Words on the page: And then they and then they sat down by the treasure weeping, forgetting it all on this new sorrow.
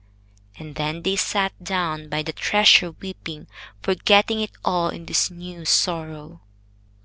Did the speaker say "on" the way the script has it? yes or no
no